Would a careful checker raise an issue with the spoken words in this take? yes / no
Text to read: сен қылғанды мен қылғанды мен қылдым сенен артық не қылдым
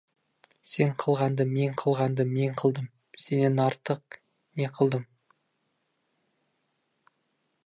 no